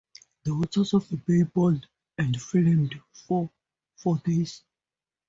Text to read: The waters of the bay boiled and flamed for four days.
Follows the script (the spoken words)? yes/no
yes